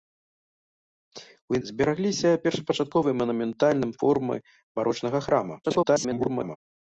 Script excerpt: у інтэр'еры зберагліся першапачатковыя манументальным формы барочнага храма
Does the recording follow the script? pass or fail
fail